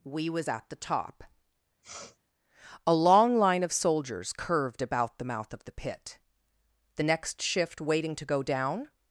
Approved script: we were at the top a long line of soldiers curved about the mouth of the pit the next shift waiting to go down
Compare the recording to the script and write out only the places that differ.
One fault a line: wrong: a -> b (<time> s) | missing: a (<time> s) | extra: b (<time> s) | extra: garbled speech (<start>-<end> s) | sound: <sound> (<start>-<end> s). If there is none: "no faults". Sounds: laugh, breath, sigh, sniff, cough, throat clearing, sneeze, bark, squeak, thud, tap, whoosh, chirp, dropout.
wrong: were -> was (0.3 s)
sound: sniff (1.8-2.2 s)